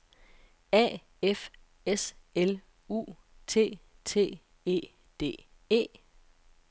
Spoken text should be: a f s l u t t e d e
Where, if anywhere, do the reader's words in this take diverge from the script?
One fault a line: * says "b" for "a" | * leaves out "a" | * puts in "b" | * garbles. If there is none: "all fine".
all fine